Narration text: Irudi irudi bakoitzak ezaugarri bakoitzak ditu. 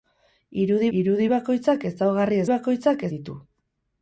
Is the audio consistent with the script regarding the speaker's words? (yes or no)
yes